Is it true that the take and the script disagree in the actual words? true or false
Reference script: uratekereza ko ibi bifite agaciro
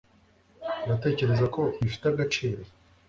true